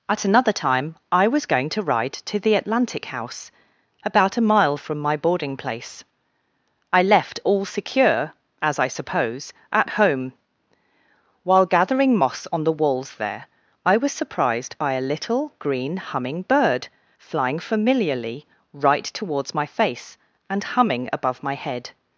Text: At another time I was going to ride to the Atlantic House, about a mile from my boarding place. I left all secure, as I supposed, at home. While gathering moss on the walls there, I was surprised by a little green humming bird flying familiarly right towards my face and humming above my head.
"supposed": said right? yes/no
no